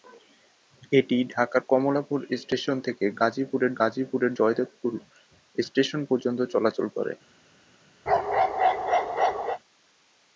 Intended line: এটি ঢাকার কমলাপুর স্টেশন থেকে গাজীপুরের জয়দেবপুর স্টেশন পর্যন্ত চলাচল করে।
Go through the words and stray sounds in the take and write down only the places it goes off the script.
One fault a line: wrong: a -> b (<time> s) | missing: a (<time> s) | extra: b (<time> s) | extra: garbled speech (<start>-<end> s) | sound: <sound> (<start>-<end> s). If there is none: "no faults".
extra: গাজীপুরের (3.8 s)
sound: bark (8.1-9.6 s)